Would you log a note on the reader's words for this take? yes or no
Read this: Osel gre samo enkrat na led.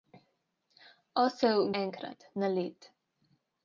yes